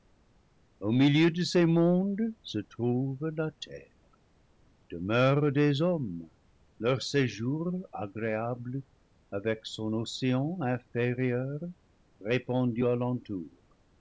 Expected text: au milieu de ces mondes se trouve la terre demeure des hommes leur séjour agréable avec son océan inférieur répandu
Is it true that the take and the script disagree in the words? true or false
false